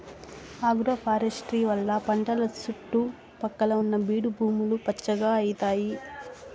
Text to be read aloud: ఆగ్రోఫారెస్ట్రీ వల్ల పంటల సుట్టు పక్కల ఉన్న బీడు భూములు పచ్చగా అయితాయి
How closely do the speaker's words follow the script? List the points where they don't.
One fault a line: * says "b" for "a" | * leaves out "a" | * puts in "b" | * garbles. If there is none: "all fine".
all fine